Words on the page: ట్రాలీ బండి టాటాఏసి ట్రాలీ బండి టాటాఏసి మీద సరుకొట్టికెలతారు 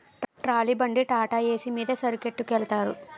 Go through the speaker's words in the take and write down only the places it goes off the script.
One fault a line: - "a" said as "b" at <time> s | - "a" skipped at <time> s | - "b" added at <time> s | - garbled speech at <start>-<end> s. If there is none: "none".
- "ట్రాలీ బండి టాటాఏసి" skipped at 1.7 s